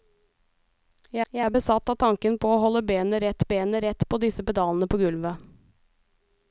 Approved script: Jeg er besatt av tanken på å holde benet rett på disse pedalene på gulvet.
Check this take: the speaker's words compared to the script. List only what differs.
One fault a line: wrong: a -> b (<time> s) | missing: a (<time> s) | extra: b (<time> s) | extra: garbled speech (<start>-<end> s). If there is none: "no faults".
extra: jeg (1.3 s)
extra: benet rett (3.5 s)